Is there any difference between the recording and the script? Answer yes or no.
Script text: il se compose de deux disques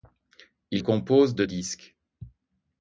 yes